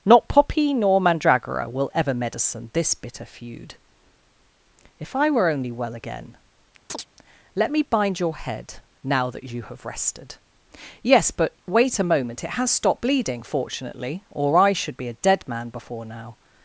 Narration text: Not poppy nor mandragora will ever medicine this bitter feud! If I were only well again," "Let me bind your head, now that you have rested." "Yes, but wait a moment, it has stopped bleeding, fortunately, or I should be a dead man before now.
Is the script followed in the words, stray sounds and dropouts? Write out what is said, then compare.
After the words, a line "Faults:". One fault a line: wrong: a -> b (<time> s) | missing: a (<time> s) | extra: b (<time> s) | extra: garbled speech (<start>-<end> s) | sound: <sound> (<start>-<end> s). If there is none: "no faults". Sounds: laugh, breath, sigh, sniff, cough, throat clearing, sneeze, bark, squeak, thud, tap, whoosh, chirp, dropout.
Not poppy nor mandragora will ever medicine this bitter feud! If I were only well again," "Let me bind your head, now that you have rested." "Yes, but wait a moment, it has stopped bleeding, fortunately, or I should be a dead man before now.
Faults:
sound: chirp (6.9-7.1 s)